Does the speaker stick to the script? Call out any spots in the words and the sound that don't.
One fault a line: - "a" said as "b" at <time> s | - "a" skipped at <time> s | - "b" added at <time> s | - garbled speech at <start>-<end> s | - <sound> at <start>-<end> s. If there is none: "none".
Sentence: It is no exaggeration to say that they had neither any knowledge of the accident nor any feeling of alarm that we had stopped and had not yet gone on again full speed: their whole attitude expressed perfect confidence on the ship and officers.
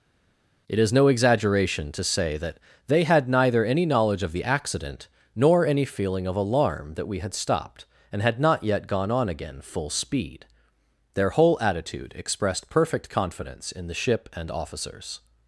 - "on" said as "in" at 13.7 s